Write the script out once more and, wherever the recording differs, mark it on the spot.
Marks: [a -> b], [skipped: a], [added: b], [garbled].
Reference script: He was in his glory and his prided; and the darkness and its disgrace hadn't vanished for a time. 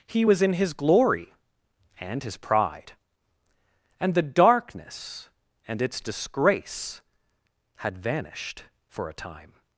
He was in his glory and his [prided; -> pride] and the darkness and its disgrace [hadn't -> had] vanished for a time.